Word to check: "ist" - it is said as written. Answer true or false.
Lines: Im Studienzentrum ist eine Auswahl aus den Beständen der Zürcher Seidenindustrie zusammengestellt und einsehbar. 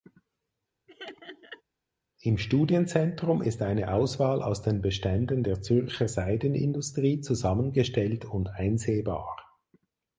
true